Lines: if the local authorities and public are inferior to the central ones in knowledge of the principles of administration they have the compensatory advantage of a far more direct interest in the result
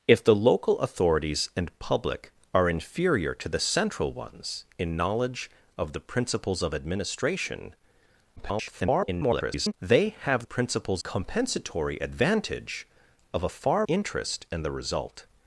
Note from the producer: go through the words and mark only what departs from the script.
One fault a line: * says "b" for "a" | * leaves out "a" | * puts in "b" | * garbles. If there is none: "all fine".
* garbles
* says "principles" for "the"
* leaves out "more direct"